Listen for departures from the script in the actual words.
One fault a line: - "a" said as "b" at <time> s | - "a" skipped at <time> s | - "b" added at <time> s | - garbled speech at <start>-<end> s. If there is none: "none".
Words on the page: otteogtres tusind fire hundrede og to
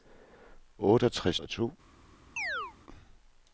- "tusind fire hundrede" skipped at 1.4 s